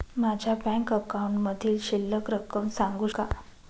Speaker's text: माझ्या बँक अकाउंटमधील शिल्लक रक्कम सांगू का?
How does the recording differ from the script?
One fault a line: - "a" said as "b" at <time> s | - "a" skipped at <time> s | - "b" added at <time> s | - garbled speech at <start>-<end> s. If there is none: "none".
none